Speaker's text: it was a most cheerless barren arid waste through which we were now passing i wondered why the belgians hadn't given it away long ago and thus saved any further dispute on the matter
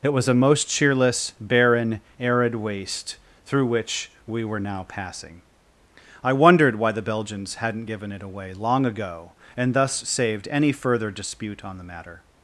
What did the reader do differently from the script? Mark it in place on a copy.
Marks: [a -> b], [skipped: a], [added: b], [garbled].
it was a most cheerless barren arid waste through which we were now passing i wondered why the belgians hadn't given it away long ago and thus saved any further dispute on the matter